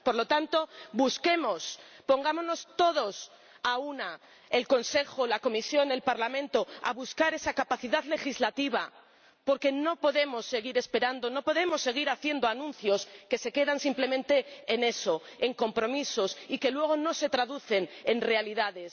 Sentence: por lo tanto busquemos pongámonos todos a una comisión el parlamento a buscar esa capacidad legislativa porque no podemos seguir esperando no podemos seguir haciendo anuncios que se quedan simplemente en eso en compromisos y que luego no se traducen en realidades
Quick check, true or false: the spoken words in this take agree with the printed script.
false